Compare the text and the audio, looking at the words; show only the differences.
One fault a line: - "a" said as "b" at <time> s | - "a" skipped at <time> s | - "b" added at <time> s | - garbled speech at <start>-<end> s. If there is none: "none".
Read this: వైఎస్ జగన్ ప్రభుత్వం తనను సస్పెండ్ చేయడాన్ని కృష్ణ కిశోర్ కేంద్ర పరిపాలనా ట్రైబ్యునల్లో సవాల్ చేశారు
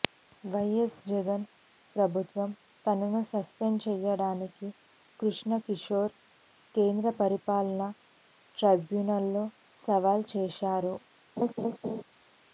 none